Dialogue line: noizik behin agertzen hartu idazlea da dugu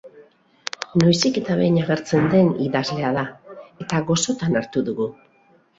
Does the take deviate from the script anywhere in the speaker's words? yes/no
yes